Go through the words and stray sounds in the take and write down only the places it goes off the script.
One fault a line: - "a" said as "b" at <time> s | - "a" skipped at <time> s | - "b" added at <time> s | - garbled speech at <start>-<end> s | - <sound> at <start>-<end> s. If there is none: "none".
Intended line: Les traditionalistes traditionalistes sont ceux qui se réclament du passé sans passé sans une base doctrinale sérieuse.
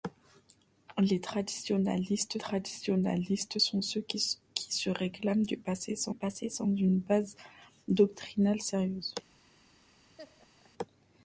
- laugh at 10.2-10.7 s